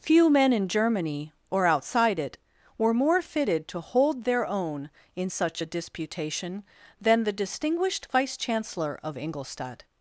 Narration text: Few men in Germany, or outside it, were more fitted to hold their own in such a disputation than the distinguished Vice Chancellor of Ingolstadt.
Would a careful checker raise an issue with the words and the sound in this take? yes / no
no